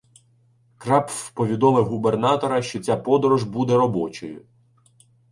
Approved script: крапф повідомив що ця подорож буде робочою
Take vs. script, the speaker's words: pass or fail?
fail